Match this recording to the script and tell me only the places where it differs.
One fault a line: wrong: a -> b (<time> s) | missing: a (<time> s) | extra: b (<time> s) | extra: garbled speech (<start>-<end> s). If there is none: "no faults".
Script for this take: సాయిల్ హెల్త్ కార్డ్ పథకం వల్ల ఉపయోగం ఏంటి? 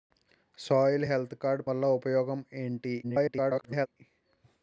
missing: పథకం (1.6 s)
extra: garbled speech (3.0-3.9 s)